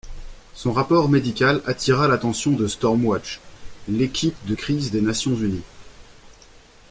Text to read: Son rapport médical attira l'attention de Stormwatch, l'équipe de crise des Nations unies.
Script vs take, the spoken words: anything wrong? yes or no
no